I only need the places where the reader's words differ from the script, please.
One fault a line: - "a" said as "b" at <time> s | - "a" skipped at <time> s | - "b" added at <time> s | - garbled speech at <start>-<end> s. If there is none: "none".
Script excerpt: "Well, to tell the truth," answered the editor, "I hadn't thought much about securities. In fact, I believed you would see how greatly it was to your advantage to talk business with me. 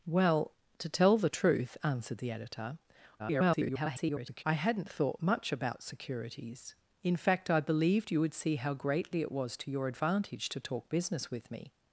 - garbled speech at 3.2-4.4 s